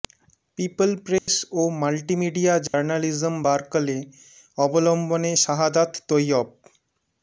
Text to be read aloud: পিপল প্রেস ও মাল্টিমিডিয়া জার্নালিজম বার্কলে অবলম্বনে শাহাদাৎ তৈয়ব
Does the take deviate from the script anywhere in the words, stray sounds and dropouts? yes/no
yes